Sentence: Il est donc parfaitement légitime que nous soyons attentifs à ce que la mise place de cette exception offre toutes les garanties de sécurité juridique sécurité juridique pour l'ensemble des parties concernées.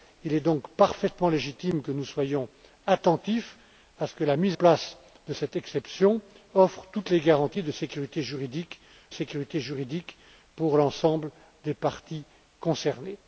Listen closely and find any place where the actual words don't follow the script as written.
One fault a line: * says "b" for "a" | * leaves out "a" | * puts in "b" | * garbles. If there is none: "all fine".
all fine